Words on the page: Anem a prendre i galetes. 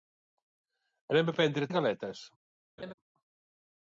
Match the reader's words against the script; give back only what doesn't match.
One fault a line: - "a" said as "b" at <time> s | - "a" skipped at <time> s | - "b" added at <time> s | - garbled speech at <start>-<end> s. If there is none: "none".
none